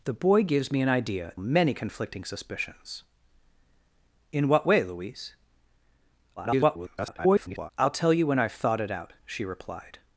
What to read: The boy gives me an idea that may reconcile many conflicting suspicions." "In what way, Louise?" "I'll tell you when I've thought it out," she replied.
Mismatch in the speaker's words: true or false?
true